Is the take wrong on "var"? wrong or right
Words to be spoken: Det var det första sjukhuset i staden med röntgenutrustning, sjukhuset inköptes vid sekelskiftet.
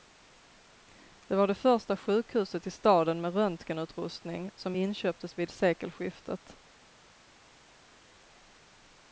right